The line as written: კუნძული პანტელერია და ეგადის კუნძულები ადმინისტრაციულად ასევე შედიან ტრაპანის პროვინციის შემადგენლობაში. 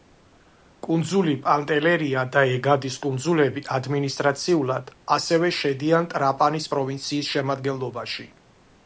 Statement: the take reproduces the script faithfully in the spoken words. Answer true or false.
true